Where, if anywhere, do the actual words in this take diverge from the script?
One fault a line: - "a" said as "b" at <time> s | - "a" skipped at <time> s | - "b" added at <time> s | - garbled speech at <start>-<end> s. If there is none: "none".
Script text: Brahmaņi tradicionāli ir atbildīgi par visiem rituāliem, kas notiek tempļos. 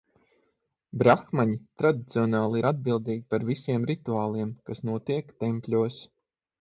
none